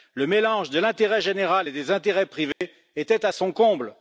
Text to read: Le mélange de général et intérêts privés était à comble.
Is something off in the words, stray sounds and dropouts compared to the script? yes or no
yes